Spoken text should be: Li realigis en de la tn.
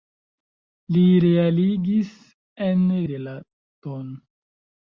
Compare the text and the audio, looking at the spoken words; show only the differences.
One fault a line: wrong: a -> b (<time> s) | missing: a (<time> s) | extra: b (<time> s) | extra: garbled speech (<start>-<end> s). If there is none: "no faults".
no faults